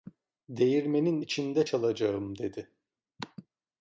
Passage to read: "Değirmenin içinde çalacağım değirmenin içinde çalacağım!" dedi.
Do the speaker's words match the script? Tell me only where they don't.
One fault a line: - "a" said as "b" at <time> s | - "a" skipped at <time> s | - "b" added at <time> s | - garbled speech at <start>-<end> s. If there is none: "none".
- "değirmenin içinde çalacağım" skipped at 2.4 s